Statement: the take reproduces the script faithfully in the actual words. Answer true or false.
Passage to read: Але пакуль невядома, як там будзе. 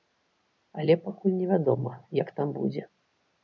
true